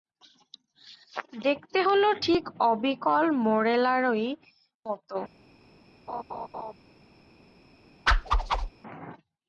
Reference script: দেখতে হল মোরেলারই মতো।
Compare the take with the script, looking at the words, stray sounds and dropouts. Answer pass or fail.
fail